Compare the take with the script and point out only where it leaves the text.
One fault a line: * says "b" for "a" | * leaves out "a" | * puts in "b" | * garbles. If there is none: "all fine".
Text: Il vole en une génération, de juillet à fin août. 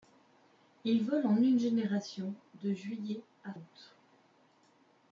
* leaves out "fin"